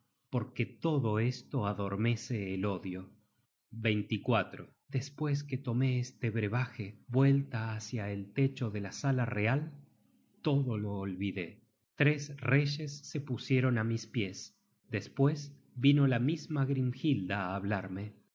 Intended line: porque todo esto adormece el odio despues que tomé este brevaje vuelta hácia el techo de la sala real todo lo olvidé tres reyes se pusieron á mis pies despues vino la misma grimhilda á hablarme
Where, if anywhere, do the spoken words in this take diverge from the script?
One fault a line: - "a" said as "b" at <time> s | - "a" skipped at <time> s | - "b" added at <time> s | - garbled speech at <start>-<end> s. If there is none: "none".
none